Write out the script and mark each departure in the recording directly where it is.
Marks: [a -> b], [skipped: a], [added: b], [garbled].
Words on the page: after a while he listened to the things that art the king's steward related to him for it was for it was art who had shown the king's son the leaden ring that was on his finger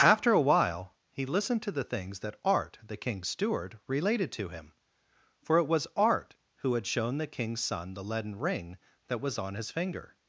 after a while he listened to the things that art the king's steward related to him for it was [skipped: for it was] art who had shown the king's son the leaden ring that was on his finger